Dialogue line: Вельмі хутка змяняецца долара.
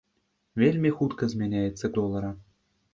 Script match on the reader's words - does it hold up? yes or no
yes